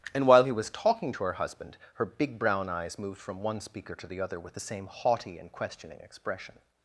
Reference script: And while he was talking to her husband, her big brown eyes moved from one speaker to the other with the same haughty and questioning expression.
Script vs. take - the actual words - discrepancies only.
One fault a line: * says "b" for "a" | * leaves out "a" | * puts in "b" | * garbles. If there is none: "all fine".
all fine